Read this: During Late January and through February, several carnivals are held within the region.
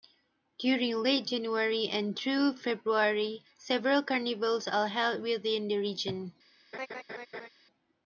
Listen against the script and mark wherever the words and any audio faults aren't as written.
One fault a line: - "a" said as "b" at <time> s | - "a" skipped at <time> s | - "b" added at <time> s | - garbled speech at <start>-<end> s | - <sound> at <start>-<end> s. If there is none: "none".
- laugh at 6.7-7.5 s